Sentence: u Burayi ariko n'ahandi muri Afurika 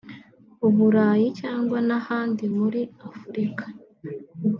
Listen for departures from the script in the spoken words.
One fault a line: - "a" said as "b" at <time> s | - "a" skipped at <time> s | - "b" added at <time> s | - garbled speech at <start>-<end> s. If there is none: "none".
- "ariko" said as "cyangwa" at 1.4 s